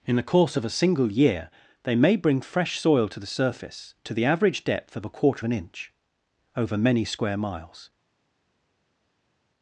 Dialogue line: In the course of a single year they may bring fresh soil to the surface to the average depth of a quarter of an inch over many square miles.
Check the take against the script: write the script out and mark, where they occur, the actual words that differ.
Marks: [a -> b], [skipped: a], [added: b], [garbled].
In the course of a single year they may bring fresh soil to the surface to the average depth of a quarter [skipped: of] an inch over many square miles.